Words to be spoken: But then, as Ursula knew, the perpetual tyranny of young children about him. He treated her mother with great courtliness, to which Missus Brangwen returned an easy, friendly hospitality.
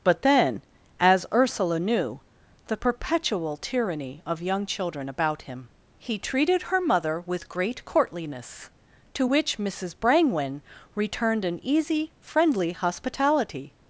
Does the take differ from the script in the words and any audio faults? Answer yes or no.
no